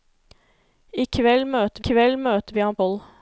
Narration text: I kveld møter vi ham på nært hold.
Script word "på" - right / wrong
wrong